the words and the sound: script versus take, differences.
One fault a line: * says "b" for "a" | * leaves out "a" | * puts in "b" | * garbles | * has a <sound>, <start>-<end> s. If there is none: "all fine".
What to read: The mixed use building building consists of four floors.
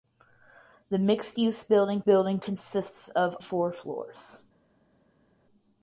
all fine